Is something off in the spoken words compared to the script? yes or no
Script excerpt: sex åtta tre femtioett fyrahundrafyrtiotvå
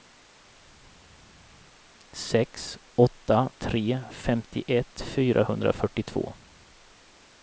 no